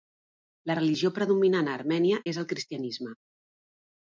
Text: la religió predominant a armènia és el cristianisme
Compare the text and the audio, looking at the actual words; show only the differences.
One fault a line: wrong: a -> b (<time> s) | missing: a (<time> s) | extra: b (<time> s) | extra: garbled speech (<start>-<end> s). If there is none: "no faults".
no faults